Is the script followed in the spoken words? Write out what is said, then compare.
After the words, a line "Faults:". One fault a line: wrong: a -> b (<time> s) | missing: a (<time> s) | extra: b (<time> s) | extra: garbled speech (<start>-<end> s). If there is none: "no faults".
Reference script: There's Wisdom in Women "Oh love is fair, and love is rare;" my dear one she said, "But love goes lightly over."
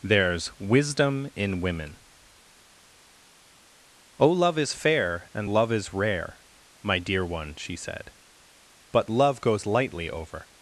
There's Wisdom in Women "Oh love is fair, and love is rare;" my dear one she said, "But love goes lightly over."
Faults:
no faults